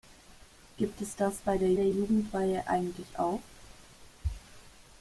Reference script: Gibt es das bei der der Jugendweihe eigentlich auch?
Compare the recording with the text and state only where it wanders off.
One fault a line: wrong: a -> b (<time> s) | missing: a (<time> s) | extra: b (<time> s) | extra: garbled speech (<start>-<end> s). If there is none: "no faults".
no faults